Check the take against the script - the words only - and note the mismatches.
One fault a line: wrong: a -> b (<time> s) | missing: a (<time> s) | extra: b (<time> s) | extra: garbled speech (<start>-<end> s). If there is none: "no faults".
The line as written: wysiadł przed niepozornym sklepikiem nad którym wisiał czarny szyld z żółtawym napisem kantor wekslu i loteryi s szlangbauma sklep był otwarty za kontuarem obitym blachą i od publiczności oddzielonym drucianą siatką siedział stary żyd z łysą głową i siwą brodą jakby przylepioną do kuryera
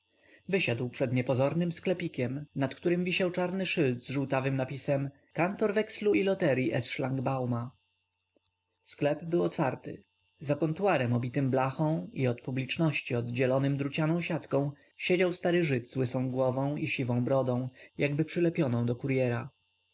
no faults